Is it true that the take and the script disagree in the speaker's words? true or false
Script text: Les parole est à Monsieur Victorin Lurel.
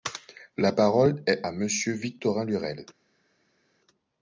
true